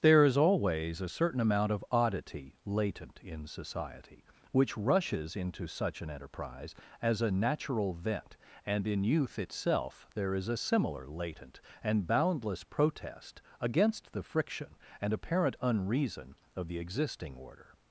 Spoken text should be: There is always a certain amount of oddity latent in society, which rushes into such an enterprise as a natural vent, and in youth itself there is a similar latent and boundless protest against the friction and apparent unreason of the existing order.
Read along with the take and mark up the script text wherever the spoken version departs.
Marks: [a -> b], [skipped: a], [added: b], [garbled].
There is always a certain amount of oddity latent in society, which rushes into such an enterprise as a natural vent, and in youth itself there is a similar latent and boundless protest against the friction and apparent unreason of the existing order.